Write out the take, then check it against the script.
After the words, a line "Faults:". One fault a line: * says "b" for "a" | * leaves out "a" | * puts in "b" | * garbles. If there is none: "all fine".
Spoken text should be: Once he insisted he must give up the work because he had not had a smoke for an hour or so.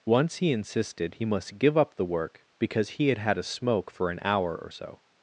Once he insisted he must give up the work because he had had a smoke for an hour or so.
Faults:
* leaves out "not"